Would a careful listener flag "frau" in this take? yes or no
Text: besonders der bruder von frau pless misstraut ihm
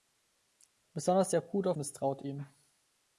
yes